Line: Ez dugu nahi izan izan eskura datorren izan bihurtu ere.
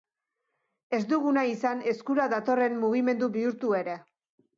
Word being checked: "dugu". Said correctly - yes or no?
yes